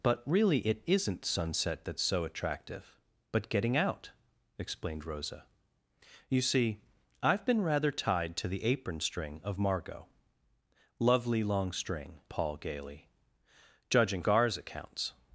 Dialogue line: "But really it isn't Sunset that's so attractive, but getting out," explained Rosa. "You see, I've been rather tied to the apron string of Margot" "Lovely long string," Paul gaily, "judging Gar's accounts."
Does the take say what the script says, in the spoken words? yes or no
yes